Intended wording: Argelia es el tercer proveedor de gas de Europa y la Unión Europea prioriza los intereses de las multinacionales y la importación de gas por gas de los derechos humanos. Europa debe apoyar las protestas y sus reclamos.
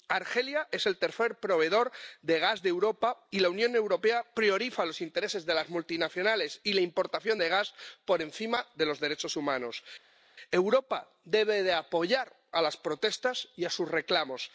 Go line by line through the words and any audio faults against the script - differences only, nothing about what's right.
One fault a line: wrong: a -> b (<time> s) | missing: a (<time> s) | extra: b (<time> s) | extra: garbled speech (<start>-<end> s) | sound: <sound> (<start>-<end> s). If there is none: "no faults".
wrong: gas -> encima (8.2 s)